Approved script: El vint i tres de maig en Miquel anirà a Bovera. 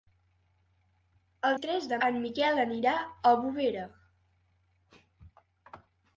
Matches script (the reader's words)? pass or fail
fail